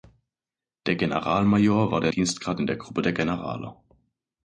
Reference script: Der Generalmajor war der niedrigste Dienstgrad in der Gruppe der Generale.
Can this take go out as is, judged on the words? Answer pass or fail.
fail